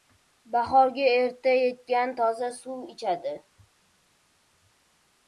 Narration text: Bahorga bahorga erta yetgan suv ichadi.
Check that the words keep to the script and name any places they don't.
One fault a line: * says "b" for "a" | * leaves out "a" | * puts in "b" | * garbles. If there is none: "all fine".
* leaves out "bahorga"
* puts in "toza"